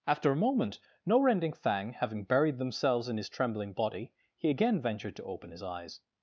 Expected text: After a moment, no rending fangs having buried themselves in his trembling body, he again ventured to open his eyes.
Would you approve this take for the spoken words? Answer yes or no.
no